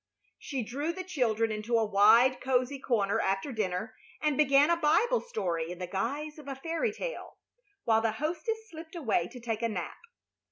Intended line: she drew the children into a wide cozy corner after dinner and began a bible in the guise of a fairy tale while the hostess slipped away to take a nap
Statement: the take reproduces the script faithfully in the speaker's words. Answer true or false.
false